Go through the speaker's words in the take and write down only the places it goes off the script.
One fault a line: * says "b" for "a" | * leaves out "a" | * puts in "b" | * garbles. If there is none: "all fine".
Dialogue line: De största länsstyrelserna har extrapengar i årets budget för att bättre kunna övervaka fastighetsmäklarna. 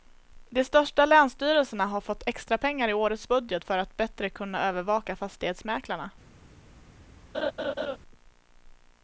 * puts in "fått"